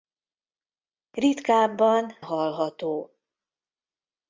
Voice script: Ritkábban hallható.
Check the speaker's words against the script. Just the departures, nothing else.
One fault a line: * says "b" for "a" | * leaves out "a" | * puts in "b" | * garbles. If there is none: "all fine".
all fine